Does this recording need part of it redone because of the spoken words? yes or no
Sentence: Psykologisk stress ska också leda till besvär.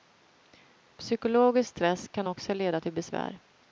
yes